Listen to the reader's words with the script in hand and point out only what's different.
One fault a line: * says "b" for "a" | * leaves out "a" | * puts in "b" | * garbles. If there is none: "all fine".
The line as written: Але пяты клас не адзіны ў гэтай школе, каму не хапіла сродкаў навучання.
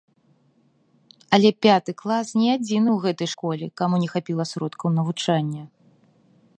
all fine